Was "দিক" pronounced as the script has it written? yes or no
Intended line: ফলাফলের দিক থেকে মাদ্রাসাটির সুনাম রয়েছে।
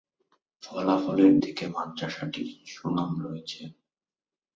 no